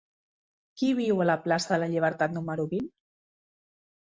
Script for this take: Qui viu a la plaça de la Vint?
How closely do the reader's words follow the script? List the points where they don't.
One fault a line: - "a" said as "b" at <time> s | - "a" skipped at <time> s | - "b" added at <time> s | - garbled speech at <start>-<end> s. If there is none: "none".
- "Llibertat número" added at 1.9 s